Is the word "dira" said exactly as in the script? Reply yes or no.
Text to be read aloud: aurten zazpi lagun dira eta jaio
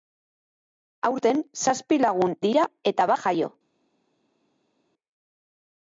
yes